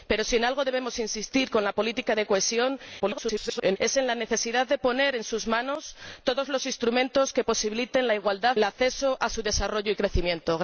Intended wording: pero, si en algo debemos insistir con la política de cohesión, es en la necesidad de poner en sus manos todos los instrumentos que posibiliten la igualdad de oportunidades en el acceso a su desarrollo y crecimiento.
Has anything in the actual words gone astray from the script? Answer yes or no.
yes